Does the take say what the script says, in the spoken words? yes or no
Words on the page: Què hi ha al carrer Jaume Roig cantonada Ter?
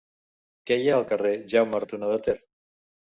no